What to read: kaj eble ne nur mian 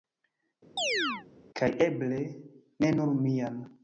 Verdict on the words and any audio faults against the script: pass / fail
fail